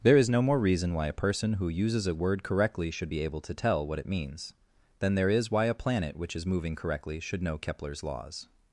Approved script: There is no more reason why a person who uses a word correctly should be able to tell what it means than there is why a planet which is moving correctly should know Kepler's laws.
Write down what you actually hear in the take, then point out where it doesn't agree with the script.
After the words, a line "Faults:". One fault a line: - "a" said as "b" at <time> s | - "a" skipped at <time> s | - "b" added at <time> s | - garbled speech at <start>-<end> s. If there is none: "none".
There is no more reason why a person who uses a word correctly should be able to tell what it means than there is why a planet which is moving correctly should know Kepler's laws.
Faults:
none